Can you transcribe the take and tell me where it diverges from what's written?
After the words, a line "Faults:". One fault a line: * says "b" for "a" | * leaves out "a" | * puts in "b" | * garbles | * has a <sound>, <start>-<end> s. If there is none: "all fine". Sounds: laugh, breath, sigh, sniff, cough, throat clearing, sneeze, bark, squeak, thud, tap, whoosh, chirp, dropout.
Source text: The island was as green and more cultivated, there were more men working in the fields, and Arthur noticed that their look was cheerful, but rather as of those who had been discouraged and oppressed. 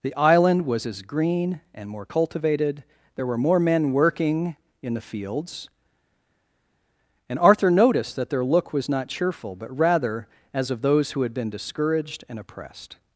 The island was as green and more cultivated, there were more men working in the fields, and Arthur noticed that their look was not cheerful, but rather as of those who had been discouraged and oppressed.
Faults:
* puts in "not"